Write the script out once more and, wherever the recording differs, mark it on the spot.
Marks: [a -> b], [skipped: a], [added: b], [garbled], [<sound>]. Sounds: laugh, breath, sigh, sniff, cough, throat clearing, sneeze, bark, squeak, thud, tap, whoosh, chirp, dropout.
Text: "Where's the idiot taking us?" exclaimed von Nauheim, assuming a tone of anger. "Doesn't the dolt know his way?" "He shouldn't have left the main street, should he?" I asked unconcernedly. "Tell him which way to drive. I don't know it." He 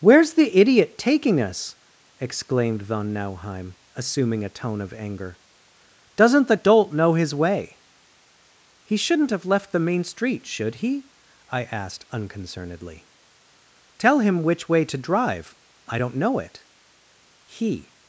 "Where's the idiot taking us?" exclaimed von Nauheim, assuming a tone of anger. "Doesn't the dolt know his way?" "He shouldn't have left the main street, should he?" I asked unconcernedly. "Tell him which way to drive. I don't know it." He